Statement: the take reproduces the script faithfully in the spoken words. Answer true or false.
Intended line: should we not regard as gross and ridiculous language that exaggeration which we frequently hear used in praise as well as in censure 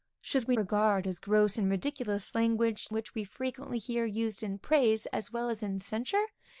false